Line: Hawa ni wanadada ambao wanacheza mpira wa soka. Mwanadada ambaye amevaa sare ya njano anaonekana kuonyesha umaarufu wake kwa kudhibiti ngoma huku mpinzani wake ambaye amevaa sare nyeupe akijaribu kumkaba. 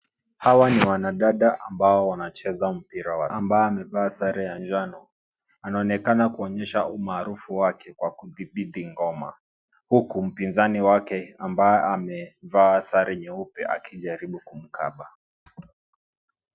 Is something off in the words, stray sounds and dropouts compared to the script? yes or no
yes